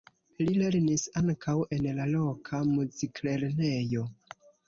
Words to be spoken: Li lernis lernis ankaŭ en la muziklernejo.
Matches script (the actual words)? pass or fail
fail